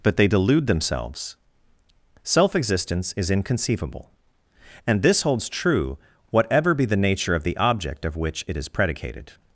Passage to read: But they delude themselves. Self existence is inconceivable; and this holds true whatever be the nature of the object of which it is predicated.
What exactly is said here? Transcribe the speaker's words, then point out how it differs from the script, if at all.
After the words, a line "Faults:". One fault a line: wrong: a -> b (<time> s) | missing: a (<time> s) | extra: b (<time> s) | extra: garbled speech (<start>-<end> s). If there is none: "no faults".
But they delude themselves. Self existence is inconceivable; and this holds true whatever be the nature of the object of which it is predicated.
Faults:
no faults